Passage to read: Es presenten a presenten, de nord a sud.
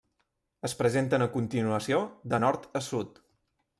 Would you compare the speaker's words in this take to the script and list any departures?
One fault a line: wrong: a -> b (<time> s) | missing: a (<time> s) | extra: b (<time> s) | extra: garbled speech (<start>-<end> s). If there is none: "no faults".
wrong: presenten -> continuació (1.3 s)